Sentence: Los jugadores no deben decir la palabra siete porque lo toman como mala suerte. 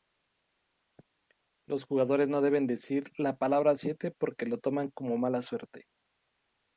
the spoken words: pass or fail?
pass